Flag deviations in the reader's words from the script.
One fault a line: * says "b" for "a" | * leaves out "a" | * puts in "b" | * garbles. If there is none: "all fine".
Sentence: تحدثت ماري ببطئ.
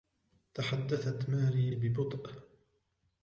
all fine